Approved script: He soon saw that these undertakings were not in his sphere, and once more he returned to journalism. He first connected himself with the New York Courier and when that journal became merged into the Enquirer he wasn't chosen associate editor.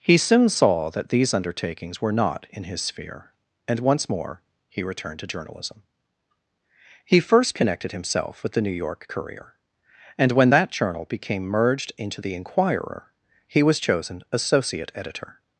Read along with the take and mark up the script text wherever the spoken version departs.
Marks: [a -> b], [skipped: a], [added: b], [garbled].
He soon saw that these undertakings were not in his sphere, and once more he returned to journalism. He first connected himself with the New York Courier and when that journal became merged into the Enquirer he [wasn't -> was] chosen associate editor.